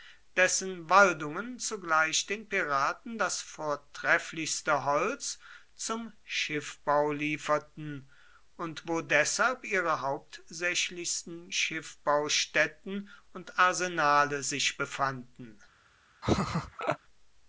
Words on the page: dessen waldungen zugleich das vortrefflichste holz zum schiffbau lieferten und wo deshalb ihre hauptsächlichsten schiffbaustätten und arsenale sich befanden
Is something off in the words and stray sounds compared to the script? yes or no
yes